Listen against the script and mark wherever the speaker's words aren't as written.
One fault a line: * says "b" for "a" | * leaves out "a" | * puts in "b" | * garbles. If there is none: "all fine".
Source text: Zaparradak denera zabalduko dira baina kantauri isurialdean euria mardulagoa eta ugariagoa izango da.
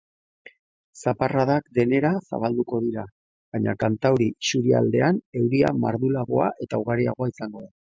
all fine